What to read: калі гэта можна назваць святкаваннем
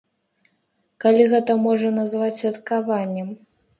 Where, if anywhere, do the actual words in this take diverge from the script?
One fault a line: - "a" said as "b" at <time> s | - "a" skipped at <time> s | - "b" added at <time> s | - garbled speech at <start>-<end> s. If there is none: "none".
none